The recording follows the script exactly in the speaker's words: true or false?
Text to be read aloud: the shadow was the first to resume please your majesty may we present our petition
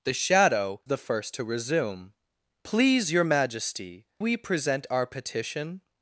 false